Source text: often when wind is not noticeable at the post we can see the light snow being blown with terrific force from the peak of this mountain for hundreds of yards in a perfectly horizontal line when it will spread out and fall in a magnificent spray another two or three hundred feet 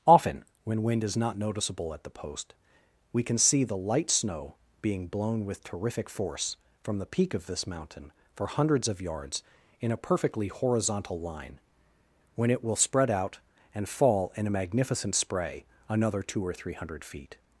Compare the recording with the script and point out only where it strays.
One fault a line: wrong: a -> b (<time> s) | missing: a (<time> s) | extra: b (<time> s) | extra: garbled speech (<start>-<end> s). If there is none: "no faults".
no faults